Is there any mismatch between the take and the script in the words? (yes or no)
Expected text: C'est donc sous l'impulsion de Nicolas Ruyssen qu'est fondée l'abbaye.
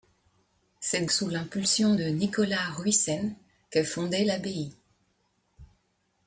yes